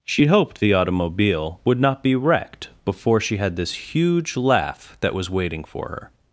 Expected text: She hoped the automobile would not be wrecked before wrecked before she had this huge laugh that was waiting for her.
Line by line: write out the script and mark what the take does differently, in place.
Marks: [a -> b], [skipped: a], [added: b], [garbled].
She hoped the automobile would not be wrecked before [skipped: wrecked before] she had this huge laugh that was waiting for her.